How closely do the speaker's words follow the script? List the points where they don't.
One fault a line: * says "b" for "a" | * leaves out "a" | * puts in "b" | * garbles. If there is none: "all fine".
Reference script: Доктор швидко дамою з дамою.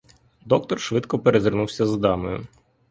* says "перезирнувся" for "дамою"